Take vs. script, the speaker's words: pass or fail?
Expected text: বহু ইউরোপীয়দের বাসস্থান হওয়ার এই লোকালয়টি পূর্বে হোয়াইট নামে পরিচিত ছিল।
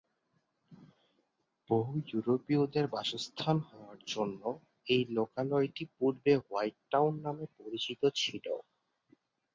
fail